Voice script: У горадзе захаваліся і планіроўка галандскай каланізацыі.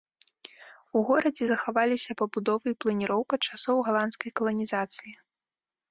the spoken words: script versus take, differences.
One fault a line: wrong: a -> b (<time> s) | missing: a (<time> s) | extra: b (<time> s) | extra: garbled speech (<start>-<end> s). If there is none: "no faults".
extra: пабудовы (2.2 s)
extra: часоў (3.5 s)